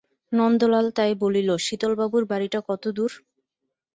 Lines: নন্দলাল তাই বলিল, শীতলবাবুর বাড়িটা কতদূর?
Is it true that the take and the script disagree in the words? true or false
false